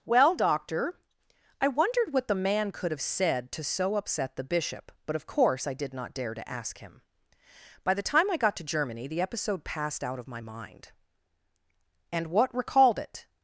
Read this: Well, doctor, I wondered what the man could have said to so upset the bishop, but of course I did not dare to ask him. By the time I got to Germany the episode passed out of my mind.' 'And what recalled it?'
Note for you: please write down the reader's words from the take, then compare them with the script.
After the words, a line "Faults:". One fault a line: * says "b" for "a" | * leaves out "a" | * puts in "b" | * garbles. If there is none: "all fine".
Well, doctor, I wondered what the man could have said to so upset the bishop, but of course I did not dare to ask him. By the time I got to Germany the episode passed out of my mind.' 'And what recalled it?'
Faults:
all fine